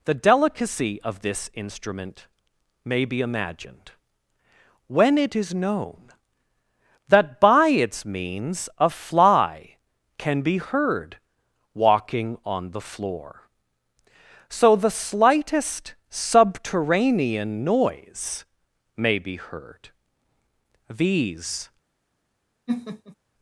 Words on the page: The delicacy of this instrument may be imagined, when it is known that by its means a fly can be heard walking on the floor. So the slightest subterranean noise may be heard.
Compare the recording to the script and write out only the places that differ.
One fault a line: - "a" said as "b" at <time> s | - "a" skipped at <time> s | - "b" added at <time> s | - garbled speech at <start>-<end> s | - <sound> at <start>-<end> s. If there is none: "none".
- "These" added at 20.9 s
- laugh at 22.7-23.2 s